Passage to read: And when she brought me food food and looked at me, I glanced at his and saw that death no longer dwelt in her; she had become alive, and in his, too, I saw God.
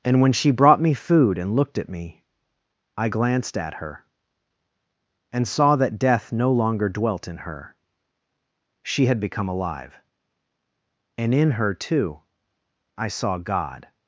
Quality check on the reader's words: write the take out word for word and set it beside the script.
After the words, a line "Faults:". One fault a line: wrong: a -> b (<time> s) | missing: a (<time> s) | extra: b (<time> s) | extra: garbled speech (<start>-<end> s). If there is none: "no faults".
And when she brought me food and looked at me, I glanced at her and saw that death no longer dwelt in her; she had become alive, and in her, too, I saw God.
Faults:
missing: food (1.4 s)
wrong: his -> her (3.7 s)
wrong: his -> her (11.5 s)